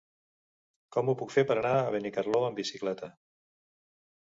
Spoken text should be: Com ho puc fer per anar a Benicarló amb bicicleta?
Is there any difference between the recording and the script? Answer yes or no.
no